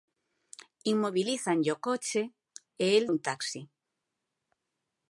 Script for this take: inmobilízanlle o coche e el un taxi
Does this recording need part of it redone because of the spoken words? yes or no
no